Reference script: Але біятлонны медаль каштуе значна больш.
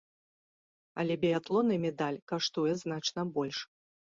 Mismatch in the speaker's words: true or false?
false